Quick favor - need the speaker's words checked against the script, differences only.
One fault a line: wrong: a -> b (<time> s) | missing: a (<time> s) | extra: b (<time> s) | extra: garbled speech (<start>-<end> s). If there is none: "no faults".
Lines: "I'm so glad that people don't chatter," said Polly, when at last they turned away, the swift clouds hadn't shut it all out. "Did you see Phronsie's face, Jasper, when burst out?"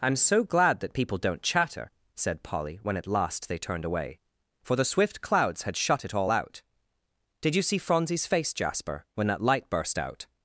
extra: for (4.6 s)
wrong: hadn't -> had (5.6 s)
extra: that light (9.3 s)